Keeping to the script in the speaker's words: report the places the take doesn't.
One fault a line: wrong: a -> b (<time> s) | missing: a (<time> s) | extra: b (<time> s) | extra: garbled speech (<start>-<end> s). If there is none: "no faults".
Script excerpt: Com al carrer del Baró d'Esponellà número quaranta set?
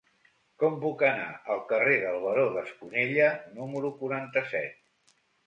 extra: puc anar (0.8 s)